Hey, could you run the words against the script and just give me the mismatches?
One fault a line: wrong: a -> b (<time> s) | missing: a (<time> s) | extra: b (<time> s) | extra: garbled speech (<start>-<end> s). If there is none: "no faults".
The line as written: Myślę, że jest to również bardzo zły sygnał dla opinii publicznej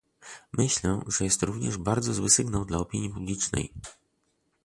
no faults